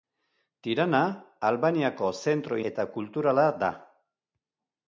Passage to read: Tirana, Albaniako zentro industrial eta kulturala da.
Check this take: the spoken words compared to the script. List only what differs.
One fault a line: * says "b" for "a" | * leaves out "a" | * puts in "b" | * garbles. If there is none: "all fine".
* leaves out "industrial"